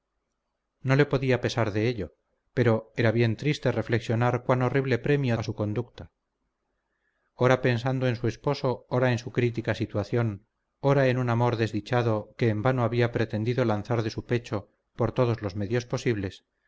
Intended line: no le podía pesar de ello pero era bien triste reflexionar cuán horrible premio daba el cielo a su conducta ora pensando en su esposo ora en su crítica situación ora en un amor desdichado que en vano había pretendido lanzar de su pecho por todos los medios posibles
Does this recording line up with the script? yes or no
no